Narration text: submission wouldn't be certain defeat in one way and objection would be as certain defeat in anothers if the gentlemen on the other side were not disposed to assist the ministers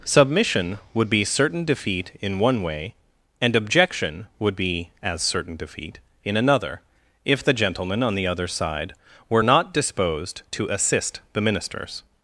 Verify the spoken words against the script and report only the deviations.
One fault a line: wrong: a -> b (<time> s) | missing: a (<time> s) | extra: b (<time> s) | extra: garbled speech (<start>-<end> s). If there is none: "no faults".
wrong: wouldn't -> would (0.9 s)
wrong: anothers -> another (6.4 s)